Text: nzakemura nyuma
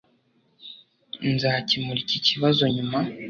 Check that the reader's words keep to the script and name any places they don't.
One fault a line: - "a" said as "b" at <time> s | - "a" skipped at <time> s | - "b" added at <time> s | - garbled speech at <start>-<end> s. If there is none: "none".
- "iki kibazo" added at 2.0 s